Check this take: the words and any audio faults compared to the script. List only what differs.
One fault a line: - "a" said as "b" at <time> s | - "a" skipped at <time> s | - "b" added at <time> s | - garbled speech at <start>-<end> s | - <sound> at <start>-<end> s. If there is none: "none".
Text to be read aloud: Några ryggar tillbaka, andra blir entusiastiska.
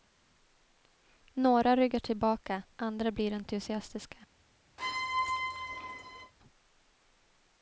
- squeak at 4.8-6.3 s